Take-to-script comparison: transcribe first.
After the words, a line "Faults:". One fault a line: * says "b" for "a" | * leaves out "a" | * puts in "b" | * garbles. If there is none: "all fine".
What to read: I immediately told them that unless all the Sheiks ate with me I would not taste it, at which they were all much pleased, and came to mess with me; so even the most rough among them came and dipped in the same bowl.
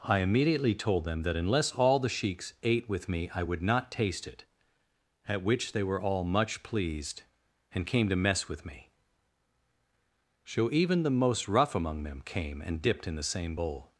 I immediately told them that unless all the Sheiks ate with me I would not taste it, at which they were all much pleased, and came to mess with me; so even the most rough among them came and dipped in the same bowl.
Faults:
all fine